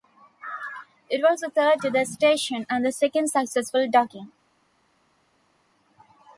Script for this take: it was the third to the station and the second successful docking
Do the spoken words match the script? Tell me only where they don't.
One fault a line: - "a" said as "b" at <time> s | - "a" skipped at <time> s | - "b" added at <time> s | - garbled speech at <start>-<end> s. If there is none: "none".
none